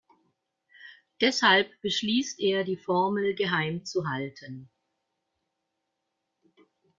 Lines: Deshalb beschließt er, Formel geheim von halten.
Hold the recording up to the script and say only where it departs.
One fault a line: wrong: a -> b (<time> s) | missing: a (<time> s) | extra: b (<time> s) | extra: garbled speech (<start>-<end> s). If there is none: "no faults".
extra: die (2.6 s)
wrong: von -> zu (3.8 s)